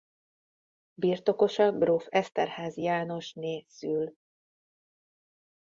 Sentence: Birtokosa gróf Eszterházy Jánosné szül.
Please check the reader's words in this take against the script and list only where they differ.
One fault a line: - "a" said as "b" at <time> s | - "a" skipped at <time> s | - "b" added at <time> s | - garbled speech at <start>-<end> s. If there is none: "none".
none